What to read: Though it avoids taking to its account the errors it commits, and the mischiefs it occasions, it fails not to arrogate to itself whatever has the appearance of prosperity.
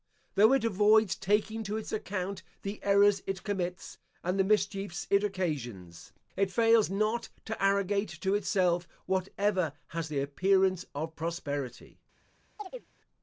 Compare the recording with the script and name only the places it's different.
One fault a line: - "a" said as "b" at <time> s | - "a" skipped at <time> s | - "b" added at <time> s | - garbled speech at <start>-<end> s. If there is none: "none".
none